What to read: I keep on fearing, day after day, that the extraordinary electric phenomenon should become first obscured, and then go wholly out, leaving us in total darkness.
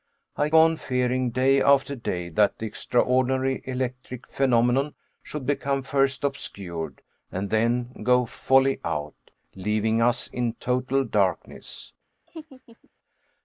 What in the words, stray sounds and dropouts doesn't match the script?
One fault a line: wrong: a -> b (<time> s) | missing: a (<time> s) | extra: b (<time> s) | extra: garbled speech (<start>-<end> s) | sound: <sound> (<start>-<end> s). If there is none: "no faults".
missing: keep (0.5 s)
sound: laugh (12.3-12.9 s)